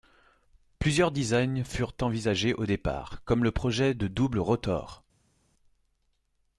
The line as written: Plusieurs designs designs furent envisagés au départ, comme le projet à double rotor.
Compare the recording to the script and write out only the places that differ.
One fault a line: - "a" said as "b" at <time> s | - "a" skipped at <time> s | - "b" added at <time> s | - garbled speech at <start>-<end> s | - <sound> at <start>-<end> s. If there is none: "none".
- "designs" skipped at 1.6 s
- "à" said as "de" at 3.9 s